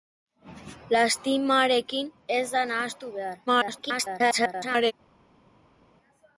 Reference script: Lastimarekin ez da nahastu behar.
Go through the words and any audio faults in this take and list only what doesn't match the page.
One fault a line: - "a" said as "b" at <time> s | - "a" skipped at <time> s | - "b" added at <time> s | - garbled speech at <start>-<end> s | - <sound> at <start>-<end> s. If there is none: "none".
- garbled speech at 3.5-4.9 s